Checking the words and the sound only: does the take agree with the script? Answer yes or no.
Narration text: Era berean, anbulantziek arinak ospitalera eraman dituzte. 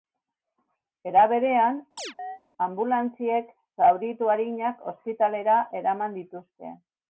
no